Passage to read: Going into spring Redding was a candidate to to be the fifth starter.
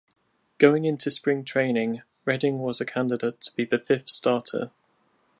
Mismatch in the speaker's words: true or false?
true